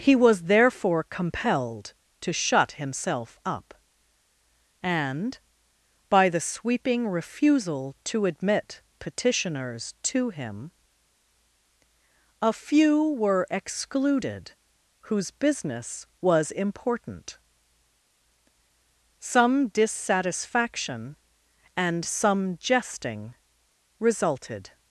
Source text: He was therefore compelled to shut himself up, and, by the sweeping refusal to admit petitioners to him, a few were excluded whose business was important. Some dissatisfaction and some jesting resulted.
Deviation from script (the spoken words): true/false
false